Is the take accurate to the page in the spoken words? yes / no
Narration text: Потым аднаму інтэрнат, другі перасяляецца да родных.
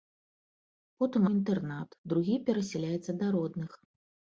no